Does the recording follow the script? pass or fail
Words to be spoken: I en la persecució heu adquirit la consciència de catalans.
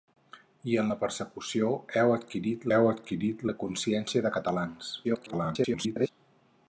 fail